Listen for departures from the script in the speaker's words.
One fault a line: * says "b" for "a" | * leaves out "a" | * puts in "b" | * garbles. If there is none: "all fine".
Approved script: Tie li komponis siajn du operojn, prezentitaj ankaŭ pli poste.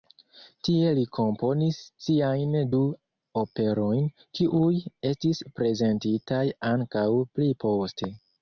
* puts in "kiuj estis"